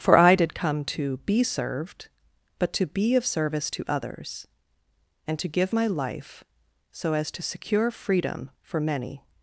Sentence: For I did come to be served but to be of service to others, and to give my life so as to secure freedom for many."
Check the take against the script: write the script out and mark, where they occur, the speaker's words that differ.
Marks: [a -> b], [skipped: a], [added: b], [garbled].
For I did come to be served but to be of service to others, and to give my life so as to secure freedom for many."